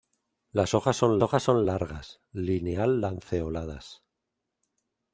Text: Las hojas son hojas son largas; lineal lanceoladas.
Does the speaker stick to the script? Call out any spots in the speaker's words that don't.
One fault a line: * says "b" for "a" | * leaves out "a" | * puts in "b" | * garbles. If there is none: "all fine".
all fine